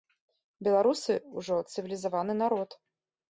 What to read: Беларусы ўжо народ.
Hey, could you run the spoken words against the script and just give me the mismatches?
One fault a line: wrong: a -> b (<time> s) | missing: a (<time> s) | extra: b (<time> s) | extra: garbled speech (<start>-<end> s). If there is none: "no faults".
extra: цывілізаваны (1.7 s)